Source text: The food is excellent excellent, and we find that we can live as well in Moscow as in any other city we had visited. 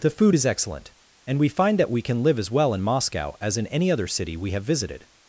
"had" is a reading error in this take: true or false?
true